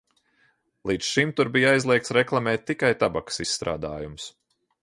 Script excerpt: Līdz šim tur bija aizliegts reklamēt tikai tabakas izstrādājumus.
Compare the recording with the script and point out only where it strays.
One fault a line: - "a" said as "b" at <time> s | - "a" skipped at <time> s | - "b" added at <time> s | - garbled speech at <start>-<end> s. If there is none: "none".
none